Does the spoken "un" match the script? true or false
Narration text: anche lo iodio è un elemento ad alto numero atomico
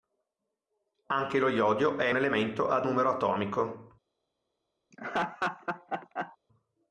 false